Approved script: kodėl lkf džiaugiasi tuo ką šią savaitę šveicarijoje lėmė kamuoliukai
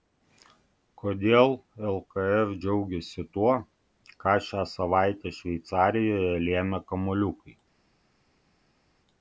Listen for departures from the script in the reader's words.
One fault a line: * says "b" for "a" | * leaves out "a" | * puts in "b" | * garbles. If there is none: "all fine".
all fine